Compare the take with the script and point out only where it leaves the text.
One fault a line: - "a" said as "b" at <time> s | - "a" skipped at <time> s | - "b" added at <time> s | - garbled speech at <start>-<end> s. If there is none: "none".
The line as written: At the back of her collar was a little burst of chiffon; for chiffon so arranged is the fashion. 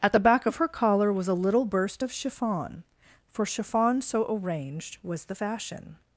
- "is" said as "was" at 5.0 s